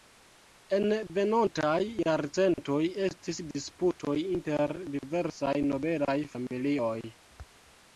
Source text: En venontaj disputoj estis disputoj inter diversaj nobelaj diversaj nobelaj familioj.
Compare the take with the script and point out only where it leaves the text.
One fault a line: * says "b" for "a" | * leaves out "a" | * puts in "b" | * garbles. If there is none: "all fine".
* says "jarcentoj" for "disputoj"
* leaves out "diversaj nobelaj"